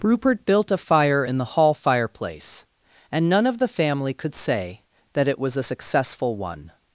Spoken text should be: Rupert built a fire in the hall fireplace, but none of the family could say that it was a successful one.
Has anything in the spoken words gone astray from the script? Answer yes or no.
yes